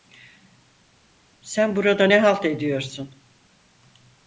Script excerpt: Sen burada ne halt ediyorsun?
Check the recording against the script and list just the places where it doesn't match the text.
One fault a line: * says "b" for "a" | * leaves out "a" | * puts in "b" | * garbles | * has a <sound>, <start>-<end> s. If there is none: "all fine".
all fine